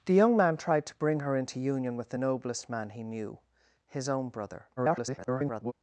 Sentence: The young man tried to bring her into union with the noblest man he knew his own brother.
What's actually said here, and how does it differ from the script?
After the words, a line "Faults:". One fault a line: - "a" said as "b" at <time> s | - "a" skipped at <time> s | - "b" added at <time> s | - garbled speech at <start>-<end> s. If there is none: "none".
The young man tried to bring her into union with the noblest man he knew his own brother. [garbled]
Faults:
- garbled speech at 4.8-5.7 s